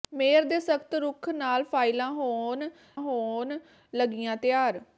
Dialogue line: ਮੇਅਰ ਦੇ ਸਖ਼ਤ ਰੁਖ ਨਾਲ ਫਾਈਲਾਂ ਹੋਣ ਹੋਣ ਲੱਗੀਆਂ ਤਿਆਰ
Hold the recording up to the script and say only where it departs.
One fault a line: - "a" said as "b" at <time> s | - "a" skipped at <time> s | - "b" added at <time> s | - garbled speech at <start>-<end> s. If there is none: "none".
none